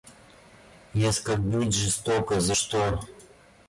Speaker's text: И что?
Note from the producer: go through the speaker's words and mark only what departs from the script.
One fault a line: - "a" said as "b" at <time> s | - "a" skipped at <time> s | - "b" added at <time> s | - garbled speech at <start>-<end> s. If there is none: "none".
- "оскорбить жестоко За" added at 1.1 s